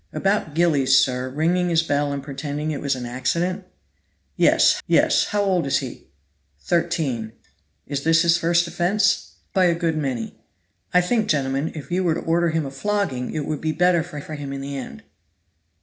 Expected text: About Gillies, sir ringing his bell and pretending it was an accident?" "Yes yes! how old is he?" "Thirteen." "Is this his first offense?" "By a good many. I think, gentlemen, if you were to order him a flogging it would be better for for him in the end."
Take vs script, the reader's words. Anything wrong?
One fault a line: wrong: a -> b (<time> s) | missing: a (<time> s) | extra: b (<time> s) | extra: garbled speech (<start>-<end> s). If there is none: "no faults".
no faults